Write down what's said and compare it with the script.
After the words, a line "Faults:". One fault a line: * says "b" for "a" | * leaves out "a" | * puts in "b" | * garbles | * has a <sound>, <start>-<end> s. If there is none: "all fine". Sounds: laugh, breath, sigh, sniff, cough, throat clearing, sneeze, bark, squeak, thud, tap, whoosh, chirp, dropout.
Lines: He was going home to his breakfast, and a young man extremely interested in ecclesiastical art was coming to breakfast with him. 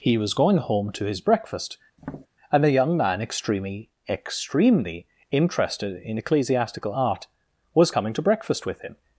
He was going home to his breakfast, and a young man extremely extremely interested in ecclesiastical art was coming to breakfast with him.
Faults:
* has a tap, 2.0-2.3 s
* puts in "extremely"